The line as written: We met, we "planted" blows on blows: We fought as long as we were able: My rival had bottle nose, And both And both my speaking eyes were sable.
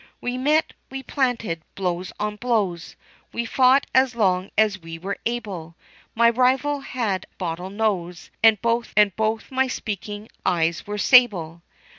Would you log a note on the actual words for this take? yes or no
no